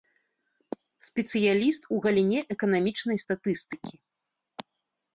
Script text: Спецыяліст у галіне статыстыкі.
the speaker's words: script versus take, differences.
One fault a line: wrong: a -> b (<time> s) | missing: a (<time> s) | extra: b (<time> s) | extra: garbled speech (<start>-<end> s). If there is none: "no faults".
extra: эканамічнай (2.6 s)